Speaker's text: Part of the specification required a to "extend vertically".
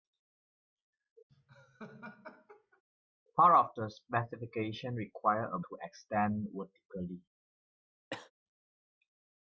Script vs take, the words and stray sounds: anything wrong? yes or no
yes